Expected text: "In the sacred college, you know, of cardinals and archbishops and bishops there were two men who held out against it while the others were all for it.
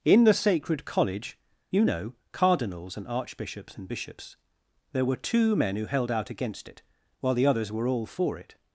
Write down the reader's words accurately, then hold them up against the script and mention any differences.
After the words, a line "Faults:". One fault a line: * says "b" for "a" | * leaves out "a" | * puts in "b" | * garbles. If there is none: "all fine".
"In the sacred college, you know, cardinals and archbishops and bishops there were two men who held out against it while the others were all for it.
Faults:
* leaves out "of"